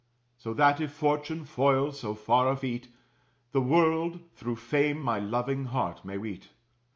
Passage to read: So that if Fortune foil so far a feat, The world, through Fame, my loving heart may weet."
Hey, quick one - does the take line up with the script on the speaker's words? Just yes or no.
yes